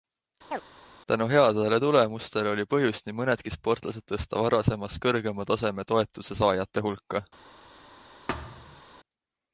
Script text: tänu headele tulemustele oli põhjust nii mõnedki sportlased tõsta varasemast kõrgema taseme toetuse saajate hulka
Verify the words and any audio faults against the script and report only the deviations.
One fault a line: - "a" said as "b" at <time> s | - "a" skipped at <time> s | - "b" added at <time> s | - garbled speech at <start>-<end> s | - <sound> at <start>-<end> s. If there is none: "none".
- chirp at 0.5-0.6 s
- thud at 8.3-8.8 s